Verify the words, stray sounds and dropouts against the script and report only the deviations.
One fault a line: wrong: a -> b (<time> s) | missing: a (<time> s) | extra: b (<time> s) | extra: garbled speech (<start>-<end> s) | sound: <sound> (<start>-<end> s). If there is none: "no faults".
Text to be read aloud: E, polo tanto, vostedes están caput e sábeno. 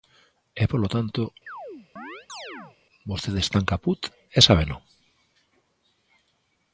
sound: chirp (1.5-2.8 s)